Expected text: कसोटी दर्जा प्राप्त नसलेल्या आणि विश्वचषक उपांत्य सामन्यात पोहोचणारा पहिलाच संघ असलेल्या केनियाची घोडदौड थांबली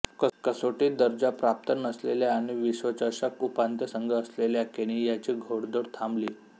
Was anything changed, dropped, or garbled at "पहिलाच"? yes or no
yes